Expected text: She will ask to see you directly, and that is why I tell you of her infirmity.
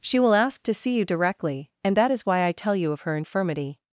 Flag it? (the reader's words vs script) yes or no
no